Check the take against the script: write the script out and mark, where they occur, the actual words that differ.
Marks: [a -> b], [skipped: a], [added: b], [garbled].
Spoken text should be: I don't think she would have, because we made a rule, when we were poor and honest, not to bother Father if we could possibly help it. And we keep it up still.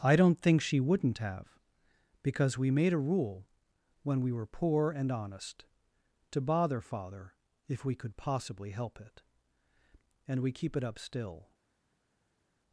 I don't think she [would -> wouldn't] have, because we made a rule, when we were poor and honest, [skipped: not] to bother Father if we could possibly help it. And we keep it up still.